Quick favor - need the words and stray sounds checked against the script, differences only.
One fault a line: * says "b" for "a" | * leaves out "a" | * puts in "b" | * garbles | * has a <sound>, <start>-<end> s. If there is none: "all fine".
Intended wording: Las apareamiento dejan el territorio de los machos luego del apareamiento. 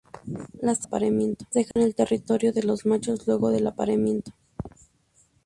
* has a dropout, 1.7-1.8 s